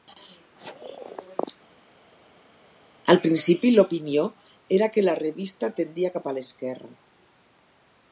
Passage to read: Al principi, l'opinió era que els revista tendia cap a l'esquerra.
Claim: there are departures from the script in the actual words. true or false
true